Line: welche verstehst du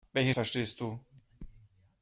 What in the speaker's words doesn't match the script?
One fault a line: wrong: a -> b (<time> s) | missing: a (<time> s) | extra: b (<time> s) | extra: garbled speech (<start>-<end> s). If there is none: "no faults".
no faults